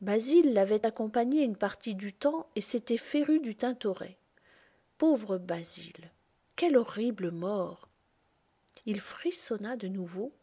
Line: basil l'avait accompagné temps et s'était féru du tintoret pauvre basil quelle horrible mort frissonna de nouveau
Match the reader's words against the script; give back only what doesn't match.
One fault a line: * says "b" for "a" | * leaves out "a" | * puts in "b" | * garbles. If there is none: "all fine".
* puts in "une partie du"
* puts in "il"